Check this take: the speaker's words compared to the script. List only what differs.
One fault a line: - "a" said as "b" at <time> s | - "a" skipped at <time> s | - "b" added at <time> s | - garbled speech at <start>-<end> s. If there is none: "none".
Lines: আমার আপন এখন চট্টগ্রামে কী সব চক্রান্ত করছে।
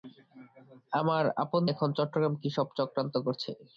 none